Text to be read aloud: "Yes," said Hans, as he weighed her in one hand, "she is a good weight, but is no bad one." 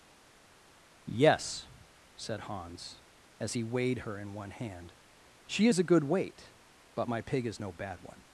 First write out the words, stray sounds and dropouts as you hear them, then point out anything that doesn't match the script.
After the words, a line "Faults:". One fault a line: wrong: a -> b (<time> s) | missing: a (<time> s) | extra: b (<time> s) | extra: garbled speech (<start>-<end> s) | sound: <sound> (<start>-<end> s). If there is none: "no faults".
"Yes," said Hans, as he weighed her in one hand, "she is a good weight, but my pig is no bad one."
Faults:
extra: my pig (7.1 s)